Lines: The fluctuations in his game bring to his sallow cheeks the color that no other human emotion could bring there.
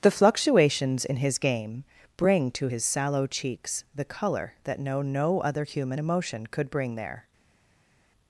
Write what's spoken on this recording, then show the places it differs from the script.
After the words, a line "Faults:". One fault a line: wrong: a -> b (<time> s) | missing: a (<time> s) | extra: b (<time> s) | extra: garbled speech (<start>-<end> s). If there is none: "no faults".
The fluctuations in his game bring to his sallow cheeks the color that no no other human emotion could bring there.
Faults:
extra: no (5.0 s)